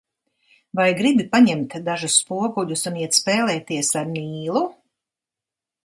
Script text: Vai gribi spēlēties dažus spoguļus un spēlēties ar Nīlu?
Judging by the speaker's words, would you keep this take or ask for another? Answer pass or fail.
fail